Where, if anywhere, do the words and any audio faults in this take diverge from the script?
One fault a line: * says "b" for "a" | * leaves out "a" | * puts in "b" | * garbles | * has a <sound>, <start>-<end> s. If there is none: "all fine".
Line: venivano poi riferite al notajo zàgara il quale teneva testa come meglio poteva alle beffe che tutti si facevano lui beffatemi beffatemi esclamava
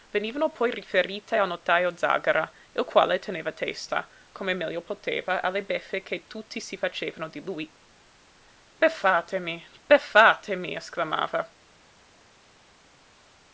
* puts in "di"